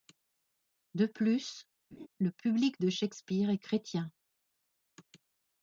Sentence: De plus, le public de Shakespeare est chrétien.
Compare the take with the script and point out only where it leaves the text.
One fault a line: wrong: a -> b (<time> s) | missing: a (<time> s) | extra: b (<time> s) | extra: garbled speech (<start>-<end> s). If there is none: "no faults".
no faults